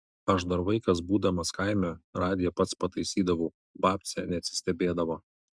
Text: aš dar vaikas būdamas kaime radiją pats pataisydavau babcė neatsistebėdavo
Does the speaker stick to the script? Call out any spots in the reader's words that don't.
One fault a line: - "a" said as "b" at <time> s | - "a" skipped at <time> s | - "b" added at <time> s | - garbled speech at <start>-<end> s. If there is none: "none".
none